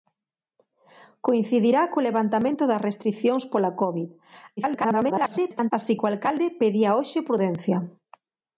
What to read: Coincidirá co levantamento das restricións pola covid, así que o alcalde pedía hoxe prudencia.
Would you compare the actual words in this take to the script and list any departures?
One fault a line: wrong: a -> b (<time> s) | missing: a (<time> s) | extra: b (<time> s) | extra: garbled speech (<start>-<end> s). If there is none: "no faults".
extra: garbled speech (4.6-5.7 s)